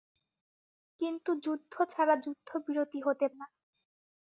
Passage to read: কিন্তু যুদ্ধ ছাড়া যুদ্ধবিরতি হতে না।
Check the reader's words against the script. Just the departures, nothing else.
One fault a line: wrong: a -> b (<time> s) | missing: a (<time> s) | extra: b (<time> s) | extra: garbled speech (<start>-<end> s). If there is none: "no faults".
no faults